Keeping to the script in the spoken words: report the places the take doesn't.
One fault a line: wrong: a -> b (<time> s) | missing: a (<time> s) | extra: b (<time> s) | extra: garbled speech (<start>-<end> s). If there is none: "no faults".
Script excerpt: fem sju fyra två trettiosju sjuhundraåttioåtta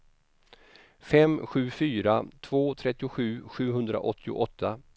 no faults